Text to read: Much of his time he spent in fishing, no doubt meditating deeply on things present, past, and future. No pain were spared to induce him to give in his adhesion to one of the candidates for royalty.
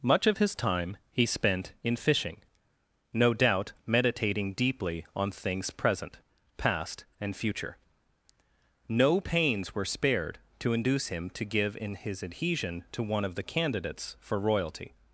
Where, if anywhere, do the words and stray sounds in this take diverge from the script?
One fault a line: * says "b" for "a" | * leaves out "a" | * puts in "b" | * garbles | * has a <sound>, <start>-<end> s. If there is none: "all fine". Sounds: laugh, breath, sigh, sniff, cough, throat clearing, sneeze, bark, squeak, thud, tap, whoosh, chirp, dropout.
* says "pains" for "pain"